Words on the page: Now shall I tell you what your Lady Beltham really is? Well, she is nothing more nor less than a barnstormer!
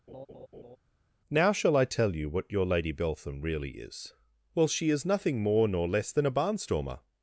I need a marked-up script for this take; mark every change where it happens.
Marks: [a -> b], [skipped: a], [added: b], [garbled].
Now shall I tell you what your Lady Beltham really is? Well, she is nothing more nor less than a barnstormer!